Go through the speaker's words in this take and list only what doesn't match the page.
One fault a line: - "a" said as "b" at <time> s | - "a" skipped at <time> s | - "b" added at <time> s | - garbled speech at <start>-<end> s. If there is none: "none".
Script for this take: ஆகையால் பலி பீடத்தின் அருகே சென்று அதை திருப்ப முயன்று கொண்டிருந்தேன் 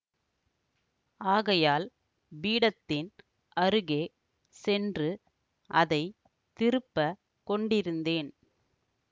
- "பலி" skipped at 1.9 s
- "முயன்று" skipped at 7.0 s